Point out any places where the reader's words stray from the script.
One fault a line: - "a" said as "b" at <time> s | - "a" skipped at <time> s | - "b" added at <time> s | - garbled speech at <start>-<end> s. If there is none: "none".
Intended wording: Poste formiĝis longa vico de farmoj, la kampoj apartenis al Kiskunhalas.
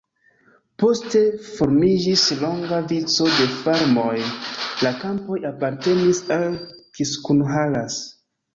none